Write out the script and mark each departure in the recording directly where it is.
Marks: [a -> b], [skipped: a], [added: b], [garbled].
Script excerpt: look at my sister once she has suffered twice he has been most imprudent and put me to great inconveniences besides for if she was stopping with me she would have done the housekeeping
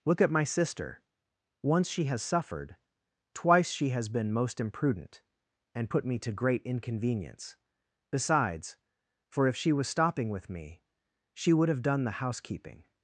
look at my sister once she has suffered twice [he -> she] has been most imprudent and put me to great [inconveniences -> inconvenience] besides for if she was stopping with me she would have done the housekeeping